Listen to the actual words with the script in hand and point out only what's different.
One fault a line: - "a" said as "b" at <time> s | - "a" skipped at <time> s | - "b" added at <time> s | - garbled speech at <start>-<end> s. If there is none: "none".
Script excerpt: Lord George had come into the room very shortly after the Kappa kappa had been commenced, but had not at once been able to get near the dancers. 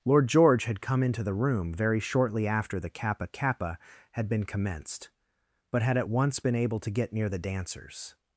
- "not" skipped at 6.0 s